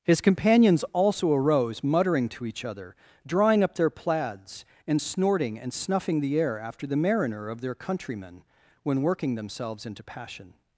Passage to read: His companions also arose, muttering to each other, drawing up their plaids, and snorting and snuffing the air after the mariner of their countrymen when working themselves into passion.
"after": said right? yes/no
yes